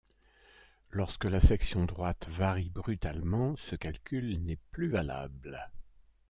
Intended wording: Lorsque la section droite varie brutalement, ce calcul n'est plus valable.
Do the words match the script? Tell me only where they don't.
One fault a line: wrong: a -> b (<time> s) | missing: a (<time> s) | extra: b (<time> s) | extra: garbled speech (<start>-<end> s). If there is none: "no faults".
no faults